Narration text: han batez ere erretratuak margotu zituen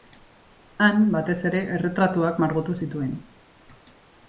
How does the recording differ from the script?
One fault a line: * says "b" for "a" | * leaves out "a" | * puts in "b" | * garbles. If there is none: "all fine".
all fine